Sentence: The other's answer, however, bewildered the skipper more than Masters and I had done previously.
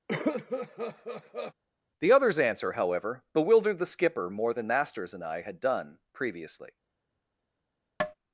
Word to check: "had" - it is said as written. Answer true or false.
true